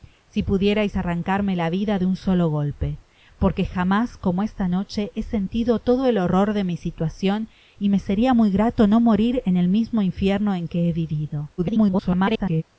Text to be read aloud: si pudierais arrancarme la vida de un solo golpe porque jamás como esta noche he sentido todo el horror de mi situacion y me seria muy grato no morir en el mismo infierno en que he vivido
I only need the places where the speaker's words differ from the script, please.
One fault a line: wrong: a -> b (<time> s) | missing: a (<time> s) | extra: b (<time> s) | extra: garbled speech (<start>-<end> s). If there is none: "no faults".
extra: garbled speech (11.6-12.6 s)